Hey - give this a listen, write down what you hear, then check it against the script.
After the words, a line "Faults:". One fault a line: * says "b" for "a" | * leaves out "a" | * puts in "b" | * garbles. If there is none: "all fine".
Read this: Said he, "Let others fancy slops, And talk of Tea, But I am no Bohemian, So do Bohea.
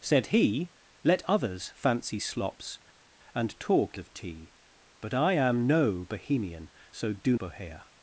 Said he, "Let others fancy slops, And talk of Tea, But I am no Bohemian, So do Bohea.
Faults:
all fine